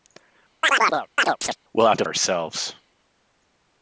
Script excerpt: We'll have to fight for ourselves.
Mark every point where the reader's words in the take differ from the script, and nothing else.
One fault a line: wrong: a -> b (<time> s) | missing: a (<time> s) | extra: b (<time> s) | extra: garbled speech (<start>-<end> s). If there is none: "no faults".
missing: fight for (2.0 s)